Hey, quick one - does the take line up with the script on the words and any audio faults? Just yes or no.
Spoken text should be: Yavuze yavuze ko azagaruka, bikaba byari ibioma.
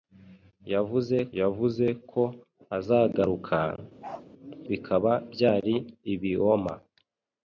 no